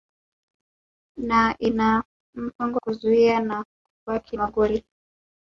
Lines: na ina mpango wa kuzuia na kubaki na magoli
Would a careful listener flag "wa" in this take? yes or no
yes